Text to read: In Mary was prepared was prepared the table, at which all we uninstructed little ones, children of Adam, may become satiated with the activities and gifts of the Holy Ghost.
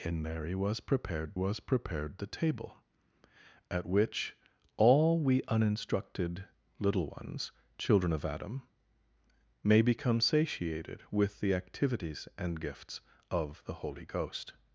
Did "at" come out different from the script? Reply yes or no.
no